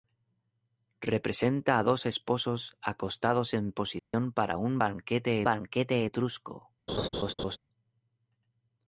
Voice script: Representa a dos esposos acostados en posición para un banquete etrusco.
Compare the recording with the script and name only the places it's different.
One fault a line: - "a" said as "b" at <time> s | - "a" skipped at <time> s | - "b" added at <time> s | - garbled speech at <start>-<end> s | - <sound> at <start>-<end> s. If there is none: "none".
- dropout at 4.0-4.1 s
- "banquete" added at 5.4 s
- laugh at 6.9-7.6 s